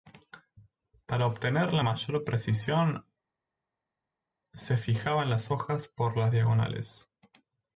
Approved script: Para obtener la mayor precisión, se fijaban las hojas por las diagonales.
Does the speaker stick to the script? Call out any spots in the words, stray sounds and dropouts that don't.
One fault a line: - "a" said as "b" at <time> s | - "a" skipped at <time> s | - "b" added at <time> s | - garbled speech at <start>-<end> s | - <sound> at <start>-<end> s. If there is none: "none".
none